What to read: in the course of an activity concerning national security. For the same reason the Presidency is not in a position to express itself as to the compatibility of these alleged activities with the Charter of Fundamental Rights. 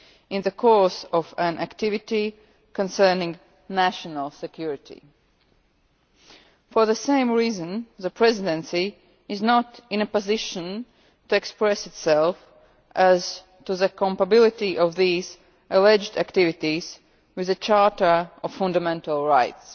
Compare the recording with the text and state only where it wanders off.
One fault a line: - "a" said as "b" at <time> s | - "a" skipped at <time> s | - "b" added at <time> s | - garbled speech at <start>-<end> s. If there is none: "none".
none